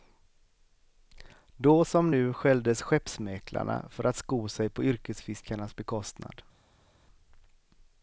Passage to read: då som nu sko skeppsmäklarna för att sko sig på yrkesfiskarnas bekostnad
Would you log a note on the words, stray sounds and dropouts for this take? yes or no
yes